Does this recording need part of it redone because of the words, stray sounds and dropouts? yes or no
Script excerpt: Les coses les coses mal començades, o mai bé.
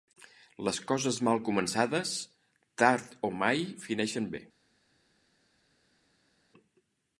yes